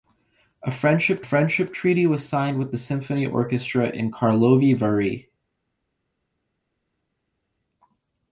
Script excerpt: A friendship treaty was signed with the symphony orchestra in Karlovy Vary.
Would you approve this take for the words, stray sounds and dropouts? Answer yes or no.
no